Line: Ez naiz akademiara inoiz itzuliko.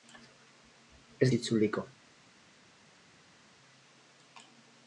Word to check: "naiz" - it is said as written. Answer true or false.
false